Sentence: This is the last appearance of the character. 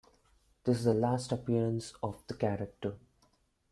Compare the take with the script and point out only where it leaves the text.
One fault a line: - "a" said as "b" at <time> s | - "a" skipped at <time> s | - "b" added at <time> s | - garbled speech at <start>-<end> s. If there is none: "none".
none